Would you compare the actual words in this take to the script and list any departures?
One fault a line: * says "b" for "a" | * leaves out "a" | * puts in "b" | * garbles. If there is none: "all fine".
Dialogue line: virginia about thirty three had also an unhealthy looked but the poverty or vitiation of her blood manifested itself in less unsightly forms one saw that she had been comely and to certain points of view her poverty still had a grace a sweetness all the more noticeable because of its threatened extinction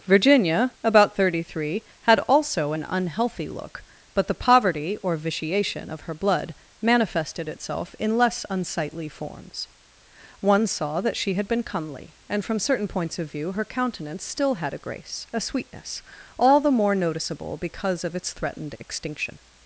* says "look" for "looked"
* says "from" for "to"
* says "countenance" for "poverty"